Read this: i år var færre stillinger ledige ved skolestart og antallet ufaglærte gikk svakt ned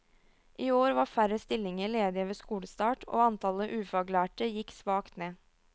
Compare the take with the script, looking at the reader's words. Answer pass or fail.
pass